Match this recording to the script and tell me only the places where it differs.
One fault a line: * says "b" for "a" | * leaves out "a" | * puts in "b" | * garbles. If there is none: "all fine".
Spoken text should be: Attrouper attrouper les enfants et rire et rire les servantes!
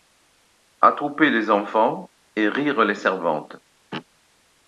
* leaves out "attrouper"
* leaves out "et rire"